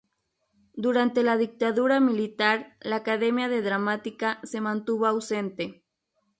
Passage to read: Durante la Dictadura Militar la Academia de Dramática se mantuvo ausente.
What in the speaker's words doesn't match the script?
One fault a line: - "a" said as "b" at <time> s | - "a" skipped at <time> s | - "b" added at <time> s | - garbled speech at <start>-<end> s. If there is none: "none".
none